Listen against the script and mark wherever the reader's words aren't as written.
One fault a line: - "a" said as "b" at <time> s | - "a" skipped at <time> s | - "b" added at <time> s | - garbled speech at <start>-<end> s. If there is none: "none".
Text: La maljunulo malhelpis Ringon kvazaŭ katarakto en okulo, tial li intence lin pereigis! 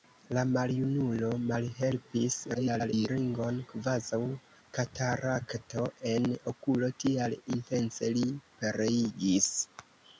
- garbled speech at 2.5-3.1 s
- "li" skipped at 7.4 s